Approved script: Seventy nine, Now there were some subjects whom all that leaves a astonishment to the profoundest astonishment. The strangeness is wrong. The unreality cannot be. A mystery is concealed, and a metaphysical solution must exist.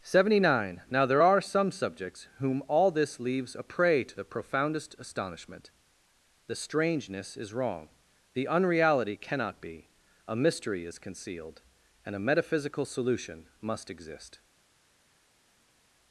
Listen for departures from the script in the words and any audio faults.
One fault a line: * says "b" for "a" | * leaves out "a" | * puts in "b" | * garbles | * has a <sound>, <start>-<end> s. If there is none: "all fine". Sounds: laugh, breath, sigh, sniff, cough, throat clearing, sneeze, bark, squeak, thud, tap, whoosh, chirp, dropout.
* says "are" for "were"
* says "this" for "that"
* says "prey" for "astonishment"